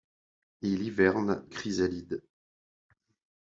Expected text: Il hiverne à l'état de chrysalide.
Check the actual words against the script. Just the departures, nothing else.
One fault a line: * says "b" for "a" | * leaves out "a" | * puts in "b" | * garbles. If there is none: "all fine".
* leaves out "à l'état de"